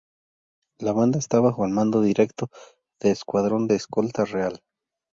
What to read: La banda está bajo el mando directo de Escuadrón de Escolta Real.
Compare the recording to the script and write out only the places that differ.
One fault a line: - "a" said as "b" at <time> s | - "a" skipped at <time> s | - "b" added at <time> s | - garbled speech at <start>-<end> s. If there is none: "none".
none